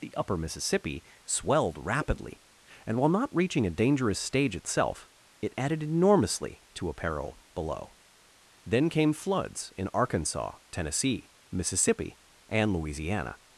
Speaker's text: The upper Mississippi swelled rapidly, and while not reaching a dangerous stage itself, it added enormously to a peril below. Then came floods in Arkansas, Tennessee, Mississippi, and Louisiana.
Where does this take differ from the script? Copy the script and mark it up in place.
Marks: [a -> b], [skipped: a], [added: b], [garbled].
The upper Mississippi swelled rapidly, and while not reaching a dangerous stage itself, it added enormously to a peril below. Then came floods in Arkansas, Tennessee, Mississippi, and Louisiana.